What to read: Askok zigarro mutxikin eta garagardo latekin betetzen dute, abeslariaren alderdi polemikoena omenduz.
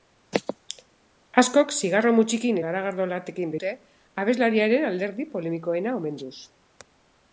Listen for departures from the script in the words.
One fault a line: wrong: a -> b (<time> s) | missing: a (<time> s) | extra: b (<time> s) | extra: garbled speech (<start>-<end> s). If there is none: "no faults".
missing: eta (2.6 s)
missing: betetzen (3.6 s)